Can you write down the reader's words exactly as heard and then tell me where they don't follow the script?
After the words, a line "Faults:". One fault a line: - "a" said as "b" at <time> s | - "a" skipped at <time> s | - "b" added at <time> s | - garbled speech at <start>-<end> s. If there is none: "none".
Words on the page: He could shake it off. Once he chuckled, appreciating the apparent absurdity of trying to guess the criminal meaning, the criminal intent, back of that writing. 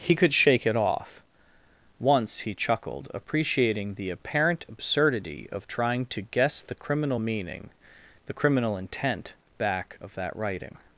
He could shake it off. Once he chuckled, appreciating the apparent absurdity of trying to guess the criminal meaning, the criminal intent, back of that writing.
Faults:
none